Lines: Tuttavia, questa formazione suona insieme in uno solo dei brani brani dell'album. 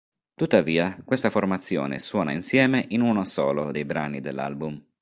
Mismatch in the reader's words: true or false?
true